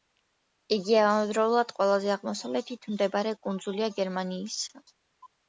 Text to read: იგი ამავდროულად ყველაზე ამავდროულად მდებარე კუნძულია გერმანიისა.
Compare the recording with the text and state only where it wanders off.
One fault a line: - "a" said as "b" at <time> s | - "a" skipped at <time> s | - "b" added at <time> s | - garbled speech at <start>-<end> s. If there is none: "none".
- "ამავდროულად" said as "აღმოსავლეთით" at 2.1 s